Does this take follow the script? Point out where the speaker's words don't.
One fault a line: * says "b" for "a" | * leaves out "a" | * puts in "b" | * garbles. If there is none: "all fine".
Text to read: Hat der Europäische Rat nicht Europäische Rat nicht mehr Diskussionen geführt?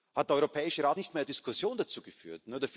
* leaves out "Europäische Rat nicht"
* puts in "dazu"